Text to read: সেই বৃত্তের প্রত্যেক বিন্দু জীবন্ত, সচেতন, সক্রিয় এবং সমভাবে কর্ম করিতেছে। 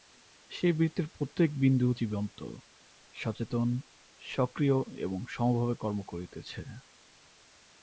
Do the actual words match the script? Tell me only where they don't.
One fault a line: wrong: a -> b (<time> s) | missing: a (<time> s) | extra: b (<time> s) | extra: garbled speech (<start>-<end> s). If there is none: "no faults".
no faults